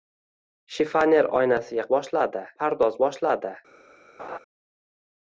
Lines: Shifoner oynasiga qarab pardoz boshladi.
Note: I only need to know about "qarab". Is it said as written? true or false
false